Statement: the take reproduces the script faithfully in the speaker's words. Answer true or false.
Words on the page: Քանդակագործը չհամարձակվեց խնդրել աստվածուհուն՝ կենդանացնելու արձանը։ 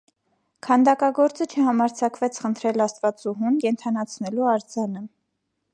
true